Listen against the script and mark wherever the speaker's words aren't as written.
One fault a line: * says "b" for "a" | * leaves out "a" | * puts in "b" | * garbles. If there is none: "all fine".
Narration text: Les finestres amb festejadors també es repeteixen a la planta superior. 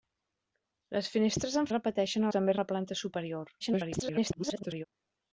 * says "repeteixen" for "festejadors"
* leaves out "repeteixen"
* garbles